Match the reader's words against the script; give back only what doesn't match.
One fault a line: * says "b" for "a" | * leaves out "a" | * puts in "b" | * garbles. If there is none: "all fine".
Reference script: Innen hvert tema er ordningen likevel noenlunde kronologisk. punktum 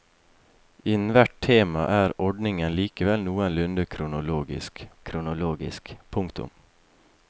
* puts in "kronologisk"